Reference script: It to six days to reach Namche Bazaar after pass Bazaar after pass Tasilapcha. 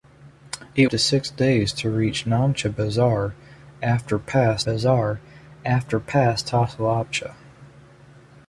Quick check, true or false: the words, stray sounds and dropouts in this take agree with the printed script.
true